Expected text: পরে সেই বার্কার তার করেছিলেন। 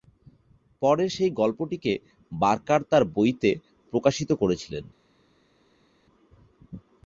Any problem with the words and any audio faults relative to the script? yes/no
yes